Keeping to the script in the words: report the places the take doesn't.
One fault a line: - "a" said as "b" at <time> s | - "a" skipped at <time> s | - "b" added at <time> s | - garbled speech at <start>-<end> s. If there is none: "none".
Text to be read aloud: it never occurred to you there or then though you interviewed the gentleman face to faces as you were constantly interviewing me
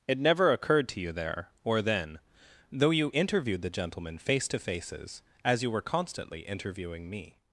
none